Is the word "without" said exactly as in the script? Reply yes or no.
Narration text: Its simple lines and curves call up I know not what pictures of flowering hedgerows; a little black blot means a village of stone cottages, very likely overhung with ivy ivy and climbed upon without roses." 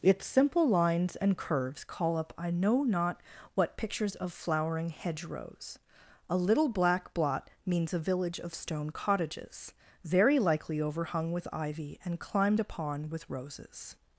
no